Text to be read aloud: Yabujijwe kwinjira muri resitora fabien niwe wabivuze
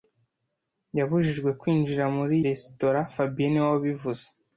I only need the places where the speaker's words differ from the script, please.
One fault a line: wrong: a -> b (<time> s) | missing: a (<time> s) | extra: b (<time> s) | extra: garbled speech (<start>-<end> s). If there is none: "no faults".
no faults